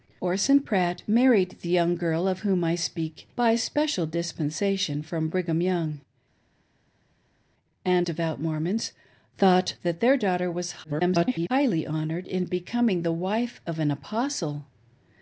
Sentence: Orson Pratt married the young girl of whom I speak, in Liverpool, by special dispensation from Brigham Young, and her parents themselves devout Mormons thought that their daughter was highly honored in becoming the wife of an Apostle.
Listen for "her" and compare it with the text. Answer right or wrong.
wrong